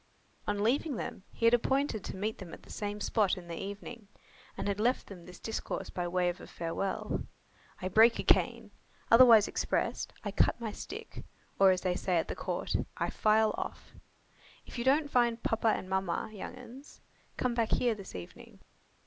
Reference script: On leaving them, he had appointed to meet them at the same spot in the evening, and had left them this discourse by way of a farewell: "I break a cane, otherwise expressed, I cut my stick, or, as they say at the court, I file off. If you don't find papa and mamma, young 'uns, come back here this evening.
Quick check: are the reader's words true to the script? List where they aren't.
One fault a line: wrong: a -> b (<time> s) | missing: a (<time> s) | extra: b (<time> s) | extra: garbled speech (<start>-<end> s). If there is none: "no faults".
no faults